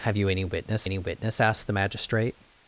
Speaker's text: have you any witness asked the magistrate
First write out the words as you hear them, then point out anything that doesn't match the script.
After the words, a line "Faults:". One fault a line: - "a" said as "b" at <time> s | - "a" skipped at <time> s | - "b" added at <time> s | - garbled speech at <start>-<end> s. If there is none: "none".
have you any witness any witness asked the magistrate
Faults:
- "any witness" added at 0.8 s